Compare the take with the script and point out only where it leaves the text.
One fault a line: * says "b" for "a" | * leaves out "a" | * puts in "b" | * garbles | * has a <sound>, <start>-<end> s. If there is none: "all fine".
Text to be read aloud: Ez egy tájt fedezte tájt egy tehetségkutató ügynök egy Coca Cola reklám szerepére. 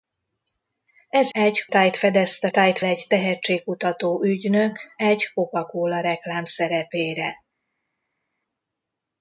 all fine